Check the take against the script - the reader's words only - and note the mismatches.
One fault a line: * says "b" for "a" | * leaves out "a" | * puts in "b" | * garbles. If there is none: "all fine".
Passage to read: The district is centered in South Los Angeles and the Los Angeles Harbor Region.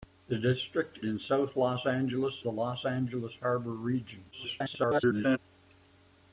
* leaves out "is centered"
* leaves out "and"
* garbles